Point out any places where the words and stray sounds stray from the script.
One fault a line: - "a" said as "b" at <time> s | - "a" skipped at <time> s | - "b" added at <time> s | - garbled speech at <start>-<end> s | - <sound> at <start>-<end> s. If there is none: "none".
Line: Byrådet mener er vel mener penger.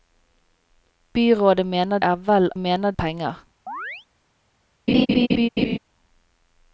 - chirp at 3.7-4.1 s
- laugh at 4.9-5.8 s